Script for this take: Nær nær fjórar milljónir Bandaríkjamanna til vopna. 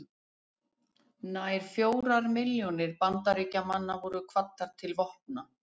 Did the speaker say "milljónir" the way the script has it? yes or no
yes